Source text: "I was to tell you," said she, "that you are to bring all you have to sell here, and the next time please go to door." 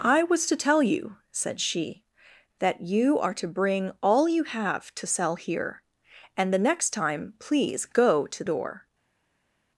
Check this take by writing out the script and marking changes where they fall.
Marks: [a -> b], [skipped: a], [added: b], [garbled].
"I was to tell you," said she, "that you are to bring all you have to sell here, and the next time please go to door."